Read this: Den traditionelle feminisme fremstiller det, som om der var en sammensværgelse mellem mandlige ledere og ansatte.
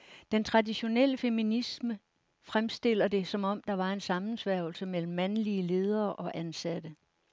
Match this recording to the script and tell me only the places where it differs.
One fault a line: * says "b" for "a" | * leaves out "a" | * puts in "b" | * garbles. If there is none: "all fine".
all fine